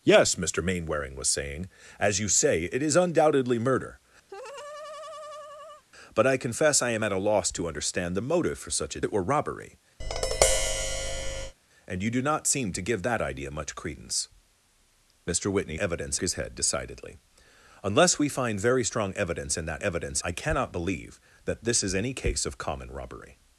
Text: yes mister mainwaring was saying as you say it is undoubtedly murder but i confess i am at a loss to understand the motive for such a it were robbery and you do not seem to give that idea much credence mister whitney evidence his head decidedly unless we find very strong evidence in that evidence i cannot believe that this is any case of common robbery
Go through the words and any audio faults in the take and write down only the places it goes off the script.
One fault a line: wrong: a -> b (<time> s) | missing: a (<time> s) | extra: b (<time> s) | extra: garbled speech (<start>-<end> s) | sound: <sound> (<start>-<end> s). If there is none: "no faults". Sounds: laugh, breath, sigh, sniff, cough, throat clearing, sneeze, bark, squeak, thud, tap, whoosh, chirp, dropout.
sound: laugh (4.3-5.8 s)
sound: tap (10.0-11.5 s)